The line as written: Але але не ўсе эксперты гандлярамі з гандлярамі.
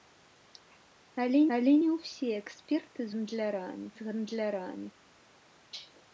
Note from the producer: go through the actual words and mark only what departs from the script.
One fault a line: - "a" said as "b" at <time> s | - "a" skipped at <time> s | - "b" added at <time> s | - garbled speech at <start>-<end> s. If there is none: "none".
none